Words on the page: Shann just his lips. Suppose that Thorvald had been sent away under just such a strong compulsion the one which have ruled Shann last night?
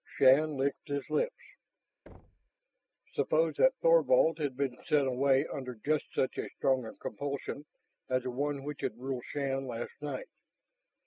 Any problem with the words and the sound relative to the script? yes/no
yes